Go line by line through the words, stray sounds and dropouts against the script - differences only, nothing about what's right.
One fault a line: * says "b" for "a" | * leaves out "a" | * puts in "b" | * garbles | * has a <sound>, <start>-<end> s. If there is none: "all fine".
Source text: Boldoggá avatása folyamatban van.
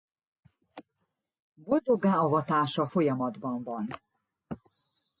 all fine